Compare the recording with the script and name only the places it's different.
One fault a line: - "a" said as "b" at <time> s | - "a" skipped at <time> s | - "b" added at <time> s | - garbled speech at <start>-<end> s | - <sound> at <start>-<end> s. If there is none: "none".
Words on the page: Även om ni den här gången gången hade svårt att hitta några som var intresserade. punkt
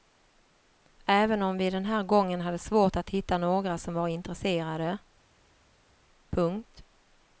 - "ni" said as "vi" at 1.6 s
- "gången" skipped at 2.4 s